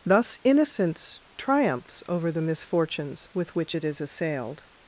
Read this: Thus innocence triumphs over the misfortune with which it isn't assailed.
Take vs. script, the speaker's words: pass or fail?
fail